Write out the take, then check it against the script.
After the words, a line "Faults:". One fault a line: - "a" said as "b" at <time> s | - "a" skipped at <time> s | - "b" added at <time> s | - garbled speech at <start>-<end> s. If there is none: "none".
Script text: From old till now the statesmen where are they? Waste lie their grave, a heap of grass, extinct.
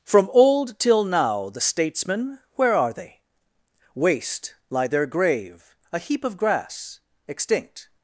From old till now the statesmen where are they? Waste lie their grave, a heap of grass, extinct.
Faults:
none